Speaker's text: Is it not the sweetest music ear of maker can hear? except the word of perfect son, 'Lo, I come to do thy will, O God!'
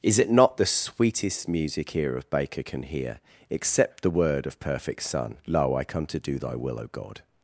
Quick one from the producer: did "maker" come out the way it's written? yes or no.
no